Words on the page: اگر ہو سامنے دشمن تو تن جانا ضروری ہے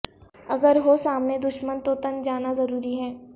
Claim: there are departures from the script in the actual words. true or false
false